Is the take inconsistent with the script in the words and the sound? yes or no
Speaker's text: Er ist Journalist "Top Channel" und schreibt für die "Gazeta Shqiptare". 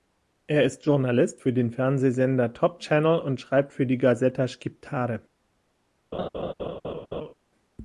yes